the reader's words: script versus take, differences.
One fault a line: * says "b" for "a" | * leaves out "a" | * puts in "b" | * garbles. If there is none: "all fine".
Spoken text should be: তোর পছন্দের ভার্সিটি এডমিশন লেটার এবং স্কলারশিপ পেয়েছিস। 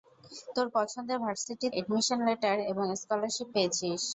all fine